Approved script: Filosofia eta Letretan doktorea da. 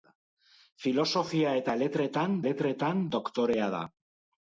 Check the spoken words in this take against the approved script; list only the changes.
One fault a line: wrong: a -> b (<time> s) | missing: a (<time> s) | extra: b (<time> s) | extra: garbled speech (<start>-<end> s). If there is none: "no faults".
extra: Letretan (2.5 s)